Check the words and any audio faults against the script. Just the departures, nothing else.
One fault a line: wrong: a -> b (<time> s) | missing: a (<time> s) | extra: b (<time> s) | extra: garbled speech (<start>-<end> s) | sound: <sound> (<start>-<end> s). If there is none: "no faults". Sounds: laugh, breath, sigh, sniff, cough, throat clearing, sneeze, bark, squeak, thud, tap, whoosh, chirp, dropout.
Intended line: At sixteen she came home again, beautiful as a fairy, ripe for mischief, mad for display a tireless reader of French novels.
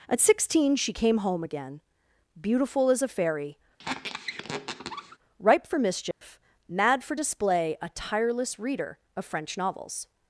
sound: squeak (3.8-5.2 s)
sound: dropout (6.1-6.2 s)